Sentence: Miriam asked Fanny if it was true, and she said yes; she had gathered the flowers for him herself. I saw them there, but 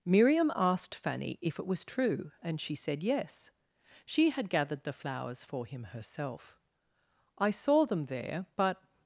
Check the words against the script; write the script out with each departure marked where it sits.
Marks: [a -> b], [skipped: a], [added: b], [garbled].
Miriam asked Fanny if it was true, and she said yes; she had gathered the flowers for him herself. I saw them there, but